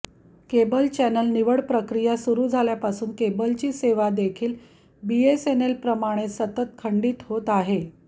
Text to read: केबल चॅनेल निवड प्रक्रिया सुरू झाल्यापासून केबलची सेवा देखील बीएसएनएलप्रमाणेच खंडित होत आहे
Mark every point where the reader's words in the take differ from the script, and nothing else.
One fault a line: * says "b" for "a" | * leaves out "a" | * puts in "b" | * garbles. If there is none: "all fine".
* puts in "सतत"